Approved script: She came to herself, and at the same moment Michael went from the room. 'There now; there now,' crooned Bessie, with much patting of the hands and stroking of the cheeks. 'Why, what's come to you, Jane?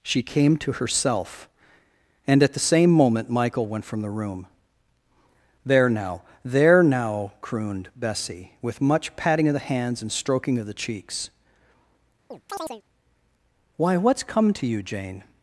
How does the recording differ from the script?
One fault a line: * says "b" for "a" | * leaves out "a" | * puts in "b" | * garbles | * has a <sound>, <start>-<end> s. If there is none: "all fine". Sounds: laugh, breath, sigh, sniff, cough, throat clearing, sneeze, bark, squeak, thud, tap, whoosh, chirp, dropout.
* has a chirp, 12.3-12.8 s